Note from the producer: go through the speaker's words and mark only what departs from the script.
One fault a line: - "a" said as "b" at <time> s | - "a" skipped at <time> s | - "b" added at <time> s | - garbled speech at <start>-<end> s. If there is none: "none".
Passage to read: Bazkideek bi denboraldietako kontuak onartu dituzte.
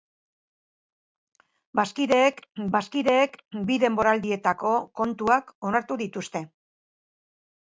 - "bazkideek" added at 2.8 s